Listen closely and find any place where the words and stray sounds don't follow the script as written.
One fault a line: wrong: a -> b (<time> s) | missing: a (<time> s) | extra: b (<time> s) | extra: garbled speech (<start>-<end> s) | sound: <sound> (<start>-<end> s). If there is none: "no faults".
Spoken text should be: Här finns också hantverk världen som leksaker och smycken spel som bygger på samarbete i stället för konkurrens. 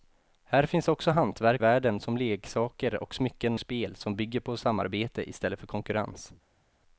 no faults